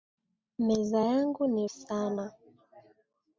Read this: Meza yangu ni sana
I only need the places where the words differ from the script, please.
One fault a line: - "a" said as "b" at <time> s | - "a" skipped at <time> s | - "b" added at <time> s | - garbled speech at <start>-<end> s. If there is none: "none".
none